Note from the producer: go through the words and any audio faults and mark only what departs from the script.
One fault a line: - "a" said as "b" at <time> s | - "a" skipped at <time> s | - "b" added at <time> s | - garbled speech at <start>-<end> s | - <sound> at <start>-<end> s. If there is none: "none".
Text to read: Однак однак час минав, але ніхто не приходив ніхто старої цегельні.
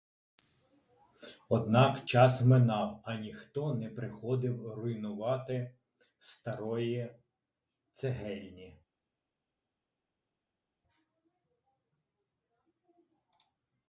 - "однак" skipped at 2.1 s
- "але" said as "а" at 3.0 s
- "ніхто" said as "руйнувати" at 4.7 s